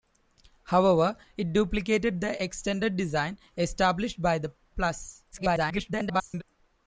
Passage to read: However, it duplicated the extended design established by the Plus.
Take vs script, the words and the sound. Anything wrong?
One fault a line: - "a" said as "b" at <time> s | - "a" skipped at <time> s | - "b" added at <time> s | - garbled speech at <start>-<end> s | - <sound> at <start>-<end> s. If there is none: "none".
- garbled speech at 5.3-6.4 s